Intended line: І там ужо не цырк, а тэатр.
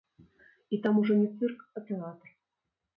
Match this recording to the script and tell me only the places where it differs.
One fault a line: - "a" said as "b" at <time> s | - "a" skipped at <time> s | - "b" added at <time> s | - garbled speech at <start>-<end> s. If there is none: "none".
none